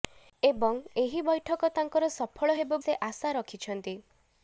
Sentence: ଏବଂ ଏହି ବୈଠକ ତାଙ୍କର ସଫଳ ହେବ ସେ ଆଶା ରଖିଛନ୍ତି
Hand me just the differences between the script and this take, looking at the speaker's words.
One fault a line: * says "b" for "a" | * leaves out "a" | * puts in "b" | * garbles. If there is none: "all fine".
all fine